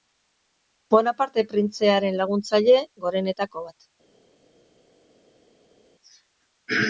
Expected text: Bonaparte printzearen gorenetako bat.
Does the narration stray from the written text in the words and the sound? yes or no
yes